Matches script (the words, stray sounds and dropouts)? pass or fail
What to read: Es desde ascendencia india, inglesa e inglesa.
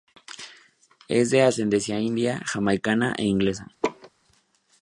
fail